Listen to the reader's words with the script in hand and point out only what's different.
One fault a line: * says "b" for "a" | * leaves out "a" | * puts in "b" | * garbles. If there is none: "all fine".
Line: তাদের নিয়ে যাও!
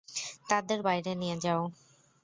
* puts in "বাইরে"